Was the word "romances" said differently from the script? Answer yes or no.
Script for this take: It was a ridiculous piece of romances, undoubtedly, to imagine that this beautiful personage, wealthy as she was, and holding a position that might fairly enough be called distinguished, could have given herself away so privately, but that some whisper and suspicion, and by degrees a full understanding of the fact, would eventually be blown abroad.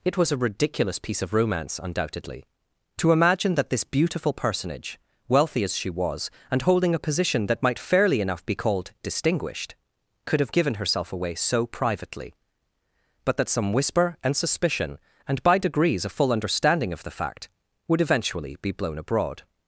yes